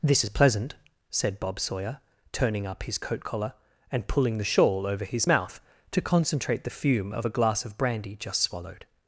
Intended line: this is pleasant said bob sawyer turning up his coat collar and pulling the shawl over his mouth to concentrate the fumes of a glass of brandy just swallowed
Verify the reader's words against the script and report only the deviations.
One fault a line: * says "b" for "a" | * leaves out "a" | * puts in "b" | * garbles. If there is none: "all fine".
* says "fume" for "fumes"